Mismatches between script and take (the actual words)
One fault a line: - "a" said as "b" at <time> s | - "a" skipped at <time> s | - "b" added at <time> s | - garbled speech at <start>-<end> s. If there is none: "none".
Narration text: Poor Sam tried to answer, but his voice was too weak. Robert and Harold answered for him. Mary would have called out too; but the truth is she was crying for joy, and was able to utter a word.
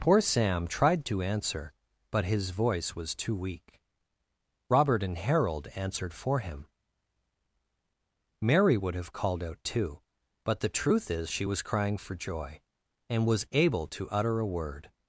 none